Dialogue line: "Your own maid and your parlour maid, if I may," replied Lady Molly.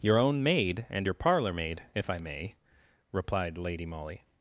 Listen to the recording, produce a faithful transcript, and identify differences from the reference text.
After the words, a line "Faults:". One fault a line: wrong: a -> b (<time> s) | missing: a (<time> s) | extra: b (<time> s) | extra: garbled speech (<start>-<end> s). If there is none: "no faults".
"Your own maid and your parlour maid, if I may," replied Lady Molly.
Faults:
no faults